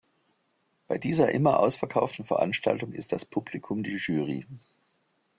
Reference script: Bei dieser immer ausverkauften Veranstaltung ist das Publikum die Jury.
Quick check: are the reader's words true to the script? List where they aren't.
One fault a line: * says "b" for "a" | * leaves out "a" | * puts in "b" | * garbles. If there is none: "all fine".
all fine